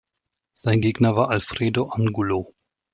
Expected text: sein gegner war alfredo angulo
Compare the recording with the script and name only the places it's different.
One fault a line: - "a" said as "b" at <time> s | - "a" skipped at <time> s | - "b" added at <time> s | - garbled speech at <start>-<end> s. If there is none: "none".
none